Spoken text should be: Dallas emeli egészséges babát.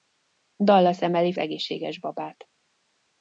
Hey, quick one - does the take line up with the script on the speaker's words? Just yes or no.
yes